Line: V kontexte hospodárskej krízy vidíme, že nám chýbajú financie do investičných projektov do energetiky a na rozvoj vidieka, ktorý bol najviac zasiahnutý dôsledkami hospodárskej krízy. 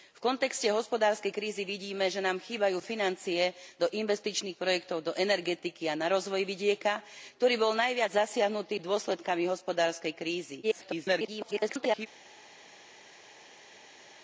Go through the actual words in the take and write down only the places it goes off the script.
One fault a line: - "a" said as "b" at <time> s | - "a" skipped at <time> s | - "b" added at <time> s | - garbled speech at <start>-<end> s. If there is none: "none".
- garbled speech at 10.6-12.1 s